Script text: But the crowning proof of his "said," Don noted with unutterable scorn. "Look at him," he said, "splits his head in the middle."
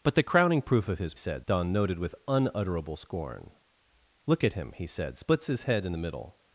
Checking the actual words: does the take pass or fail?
pass